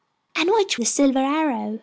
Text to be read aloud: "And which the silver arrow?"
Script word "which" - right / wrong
right